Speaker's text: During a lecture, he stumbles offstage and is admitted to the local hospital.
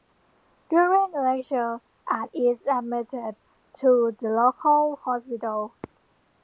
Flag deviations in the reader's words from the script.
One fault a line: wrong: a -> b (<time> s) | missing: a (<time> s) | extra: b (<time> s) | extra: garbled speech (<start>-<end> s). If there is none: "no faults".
missing: he stumbles offstage (1.8 s)